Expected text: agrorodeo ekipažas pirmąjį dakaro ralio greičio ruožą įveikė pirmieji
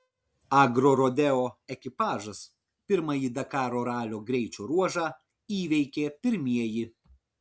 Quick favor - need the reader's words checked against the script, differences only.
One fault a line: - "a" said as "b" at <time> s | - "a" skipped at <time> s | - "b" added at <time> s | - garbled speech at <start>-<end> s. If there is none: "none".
none